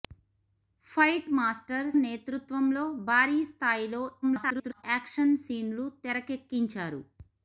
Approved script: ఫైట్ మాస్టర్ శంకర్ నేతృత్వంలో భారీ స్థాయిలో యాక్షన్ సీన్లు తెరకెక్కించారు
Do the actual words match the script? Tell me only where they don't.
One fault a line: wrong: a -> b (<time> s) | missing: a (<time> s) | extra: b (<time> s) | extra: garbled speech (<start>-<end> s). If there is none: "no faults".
missing: శంకర్ (1.9 s)
extra: garbled speech (4.2-4.8 s)